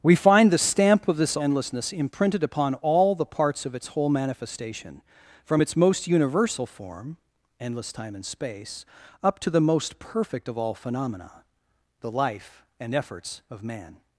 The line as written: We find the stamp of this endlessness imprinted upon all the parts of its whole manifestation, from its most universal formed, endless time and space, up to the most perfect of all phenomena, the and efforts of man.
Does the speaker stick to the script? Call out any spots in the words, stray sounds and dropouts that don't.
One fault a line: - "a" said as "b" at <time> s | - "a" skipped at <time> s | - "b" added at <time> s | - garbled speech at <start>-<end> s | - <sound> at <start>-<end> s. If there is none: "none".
- "formed" said as "form" at 6.7 s
- "life" added at 12.1 s